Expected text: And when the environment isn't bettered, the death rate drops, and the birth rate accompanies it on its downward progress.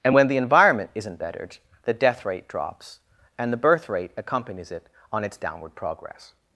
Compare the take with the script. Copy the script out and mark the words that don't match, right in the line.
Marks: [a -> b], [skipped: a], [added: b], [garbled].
And when the environment isn't bettered, the death rate drops, and the birth rate accompanies it on its downward progress.